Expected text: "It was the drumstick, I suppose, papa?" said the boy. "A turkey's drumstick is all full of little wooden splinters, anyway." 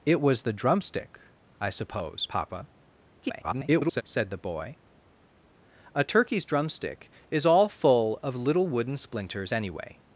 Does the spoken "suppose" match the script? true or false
true